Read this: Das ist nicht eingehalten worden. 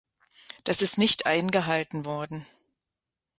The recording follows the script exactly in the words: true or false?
true